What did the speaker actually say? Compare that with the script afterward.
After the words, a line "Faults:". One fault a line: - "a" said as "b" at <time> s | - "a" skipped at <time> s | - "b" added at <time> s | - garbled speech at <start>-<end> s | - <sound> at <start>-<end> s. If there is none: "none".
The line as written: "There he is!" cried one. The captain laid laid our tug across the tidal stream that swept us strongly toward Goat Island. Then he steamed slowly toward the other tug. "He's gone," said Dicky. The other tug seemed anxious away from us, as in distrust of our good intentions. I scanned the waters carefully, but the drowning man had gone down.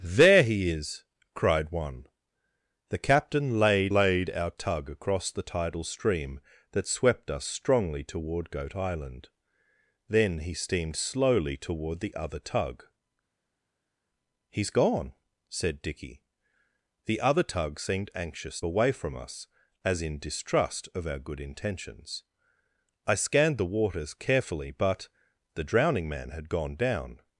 "There he is!" cried one. The captain laid laid our tug across the tidal stream that swept us strongly toward Goat Island. Then he steamed slowly toward the other tug. "He's gone," said Dicky. The other tug seemed anxious away from us, as in distrust of our good intentions. I scanned the waters carefully, but the drowning man had gone down.
Faults:
none